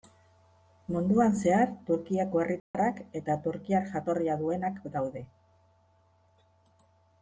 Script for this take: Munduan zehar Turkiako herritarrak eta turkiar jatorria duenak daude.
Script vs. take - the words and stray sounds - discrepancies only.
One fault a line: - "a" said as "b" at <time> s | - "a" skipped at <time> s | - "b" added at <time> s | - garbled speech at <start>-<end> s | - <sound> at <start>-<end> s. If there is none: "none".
- dropout at 2.6-2.7 s